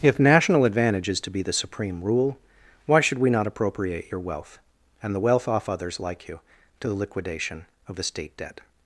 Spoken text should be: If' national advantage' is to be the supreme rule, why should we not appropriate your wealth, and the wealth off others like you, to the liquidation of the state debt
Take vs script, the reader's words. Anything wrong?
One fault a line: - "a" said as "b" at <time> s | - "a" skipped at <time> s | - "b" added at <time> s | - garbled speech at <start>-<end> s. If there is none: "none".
none